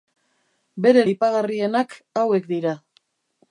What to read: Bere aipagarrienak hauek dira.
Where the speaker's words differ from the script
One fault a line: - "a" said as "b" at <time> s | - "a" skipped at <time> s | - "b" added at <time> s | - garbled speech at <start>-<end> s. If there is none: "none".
none